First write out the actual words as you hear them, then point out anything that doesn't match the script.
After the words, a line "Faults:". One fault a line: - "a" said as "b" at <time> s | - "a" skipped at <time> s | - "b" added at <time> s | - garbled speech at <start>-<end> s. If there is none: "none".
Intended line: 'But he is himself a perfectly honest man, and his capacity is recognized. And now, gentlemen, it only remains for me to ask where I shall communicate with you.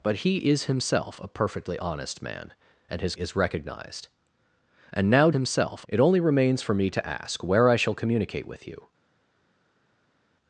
'But he is himself a perfectly honest man, and his is recognized. And now, himself, it only remains for me to ask where I shall communicate with you.
Faults:
- "capacity" skipped at 3.1 s
- "gentlemen" said as "himself" at 5.3 s